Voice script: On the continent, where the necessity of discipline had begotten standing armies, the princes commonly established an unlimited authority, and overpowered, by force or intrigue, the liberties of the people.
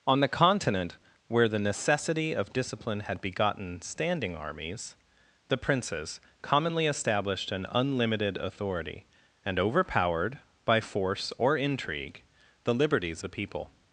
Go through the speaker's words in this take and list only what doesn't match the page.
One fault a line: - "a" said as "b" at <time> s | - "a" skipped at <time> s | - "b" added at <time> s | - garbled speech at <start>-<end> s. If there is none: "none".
- "of" skipped at 13.2 s